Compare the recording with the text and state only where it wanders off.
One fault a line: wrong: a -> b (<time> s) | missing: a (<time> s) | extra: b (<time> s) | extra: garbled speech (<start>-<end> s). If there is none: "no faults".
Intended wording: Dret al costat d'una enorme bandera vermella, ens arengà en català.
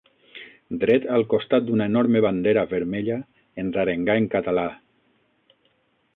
no faults